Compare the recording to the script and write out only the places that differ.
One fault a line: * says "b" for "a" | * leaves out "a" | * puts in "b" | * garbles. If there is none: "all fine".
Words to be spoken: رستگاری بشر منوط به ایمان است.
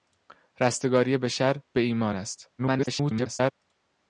* leaves out "منوط"
* garbles